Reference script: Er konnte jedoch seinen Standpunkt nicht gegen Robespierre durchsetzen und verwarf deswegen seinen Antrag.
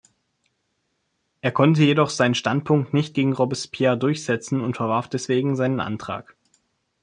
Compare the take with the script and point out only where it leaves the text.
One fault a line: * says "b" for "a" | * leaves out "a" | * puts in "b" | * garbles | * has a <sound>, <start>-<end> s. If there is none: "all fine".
all fine